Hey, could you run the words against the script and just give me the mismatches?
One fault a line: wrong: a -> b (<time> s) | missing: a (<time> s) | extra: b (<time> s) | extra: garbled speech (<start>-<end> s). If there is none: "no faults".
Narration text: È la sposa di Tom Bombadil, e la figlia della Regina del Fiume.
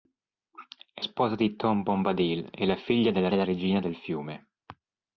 missing: la (1.1 s)
extra: della (3.3 s)